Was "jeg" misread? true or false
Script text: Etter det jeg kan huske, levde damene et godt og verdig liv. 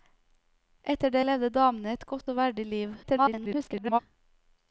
true